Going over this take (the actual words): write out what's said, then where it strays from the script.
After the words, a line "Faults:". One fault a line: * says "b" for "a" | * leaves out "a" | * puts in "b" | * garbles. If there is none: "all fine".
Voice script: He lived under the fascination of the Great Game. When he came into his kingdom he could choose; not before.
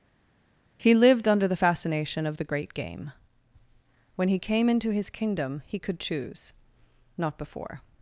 He lived under the fascination of the Great Game. When he came into his kingdom he could choose; not before.
Faults:
all fine